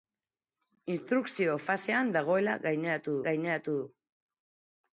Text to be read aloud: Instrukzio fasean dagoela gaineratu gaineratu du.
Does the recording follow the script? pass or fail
pass